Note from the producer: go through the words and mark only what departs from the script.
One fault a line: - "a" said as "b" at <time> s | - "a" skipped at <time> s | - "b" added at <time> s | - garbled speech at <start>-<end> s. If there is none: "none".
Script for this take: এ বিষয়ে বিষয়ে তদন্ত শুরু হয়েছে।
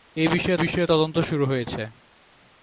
none